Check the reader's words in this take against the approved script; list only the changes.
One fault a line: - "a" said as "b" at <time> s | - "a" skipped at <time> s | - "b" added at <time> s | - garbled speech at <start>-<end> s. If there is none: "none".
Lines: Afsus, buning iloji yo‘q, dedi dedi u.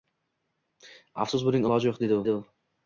none